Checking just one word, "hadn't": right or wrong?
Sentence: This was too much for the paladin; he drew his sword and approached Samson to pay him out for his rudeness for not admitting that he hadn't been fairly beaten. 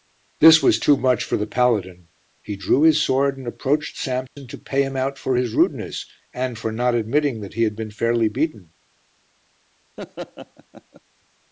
wrong